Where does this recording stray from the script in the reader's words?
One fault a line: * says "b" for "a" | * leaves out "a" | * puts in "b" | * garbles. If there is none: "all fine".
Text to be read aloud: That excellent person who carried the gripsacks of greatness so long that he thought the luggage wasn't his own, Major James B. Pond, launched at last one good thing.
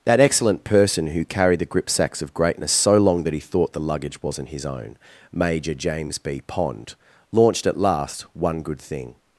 all fine